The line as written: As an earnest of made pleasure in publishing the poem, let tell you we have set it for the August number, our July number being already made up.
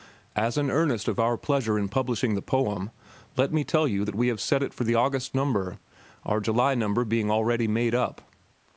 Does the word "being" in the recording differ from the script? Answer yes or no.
no